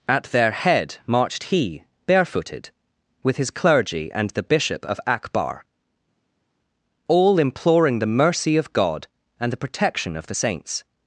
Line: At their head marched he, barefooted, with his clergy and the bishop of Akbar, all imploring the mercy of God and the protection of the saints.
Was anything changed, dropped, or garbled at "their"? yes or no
no